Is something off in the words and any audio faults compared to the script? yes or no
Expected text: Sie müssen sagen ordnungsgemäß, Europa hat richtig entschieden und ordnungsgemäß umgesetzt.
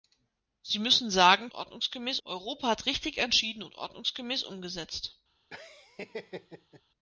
yes